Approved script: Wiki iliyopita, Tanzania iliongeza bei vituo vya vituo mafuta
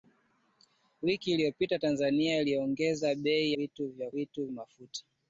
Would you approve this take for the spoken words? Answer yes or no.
yes